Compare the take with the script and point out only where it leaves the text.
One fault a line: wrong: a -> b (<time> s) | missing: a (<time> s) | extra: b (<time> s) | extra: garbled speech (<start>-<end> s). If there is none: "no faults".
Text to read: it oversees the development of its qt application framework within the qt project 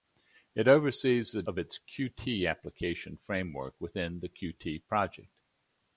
missing: development (1.4 s)